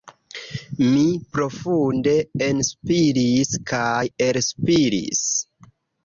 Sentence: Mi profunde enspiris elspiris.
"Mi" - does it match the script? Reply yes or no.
yes